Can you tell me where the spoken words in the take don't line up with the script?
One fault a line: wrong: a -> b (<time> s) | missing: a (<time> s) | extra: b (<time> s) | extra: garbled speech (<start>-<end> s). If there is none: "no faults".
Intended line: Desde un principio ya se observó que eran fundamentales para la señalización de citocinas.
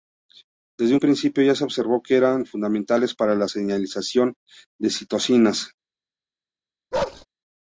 no faults